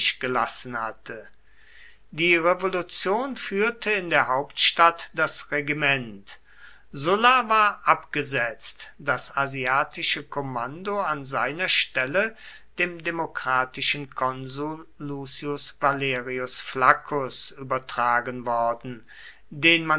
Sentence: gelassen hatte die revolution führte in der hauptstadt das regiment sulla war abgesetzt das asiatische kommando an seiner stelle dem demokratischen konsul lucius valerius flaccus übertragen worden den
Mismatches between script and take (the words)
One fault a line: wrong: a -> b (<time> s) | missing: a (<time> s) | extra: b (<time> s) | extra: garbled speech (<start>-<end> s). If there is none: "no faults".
no faults